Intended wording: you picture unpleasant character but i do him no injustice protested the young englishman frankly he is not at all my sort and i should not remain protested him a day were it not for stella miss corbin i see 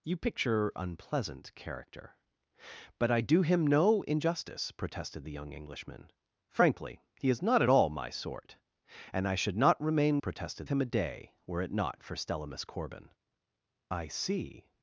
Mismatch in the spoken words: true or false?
false